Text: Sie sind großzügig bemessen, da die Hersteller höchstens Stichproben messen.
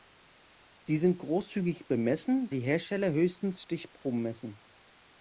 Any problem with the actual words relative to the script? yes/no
yes